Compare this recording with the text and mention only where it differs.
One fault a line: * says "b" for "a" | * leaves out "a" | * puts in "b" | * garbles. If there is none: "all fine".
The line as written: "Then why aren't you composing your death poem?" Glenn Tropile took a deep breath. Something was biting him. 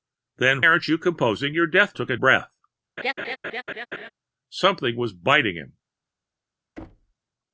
* leaves out "why"
* leaves out "poem Glenn Tropile"
* leaves out "deep"